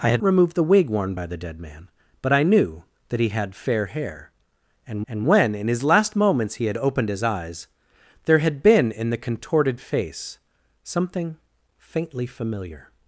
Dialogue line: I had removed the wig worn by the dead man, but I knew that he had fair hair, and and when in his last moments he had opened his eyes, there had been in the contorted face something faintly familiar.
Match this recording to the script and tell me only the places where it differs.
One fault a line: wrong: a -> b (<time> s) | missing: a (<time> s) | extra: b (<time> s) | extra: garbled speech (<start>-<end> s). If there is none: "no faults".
no faults